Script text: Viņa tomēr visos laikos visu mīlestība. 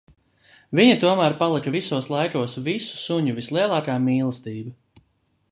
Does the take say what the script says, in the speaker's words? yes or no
no